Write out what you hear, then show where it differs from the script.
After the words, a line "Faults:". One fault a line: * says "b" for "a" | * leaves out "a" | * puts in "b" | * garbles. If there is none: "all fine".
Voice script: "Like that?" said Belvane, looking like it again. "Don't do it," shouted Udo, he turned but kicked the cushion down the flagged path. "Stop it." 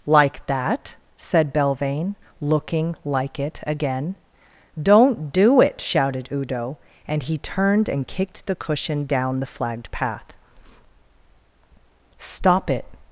"Like that?" said Belvane, looking like it again. "Don't do it," shouted Udo, and he turned and kicked the cushion down the flagged path. "Stop it."
Faults:
* puts in "and"
* says "and" for "but"